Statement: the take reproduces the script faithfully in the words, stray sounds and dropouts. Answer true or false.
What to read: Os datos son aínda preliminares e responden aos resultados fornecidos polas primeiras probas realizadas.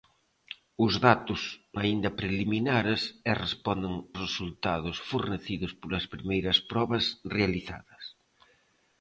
false